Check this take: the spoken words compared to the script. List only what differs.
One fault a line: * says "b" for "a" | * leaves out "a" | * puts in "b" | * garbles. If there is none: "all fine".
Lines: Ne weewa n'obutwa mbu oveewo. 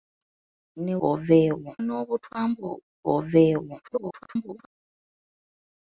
* says "oveewo" for "weewa"
* garbles